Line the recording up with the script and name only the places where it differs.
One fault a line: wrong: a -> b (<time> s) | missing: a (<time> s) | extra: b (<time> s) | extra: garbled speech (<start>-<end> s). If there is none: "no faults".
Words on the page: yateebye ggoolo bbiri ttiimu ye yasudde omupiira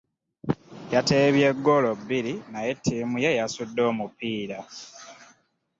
extra: naye (2.5 s)